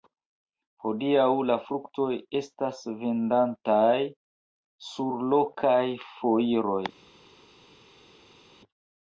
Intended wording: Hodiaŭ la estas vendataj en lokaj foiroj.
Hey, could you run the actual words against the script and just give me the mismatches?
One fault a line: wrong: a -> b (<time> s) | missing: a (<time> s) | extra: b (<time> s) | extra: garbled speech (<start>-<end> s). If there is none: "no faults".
extra: fruktoj (1.6 s)
wrong: en -> sur (4.9 s)